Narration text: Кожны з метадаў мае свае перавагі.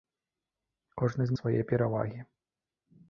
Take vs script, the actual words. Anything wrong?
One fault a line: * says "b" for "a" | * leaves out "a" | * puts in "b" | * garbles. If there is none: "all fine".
* leaves out "метадаў мае"